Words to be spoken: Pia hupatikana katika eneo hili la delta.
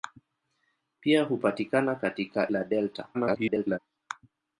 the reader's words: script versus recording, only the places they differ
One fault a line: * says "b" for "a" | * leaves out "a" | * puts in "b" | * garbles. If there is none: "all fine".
* leaves out "eneo hili"
* garbles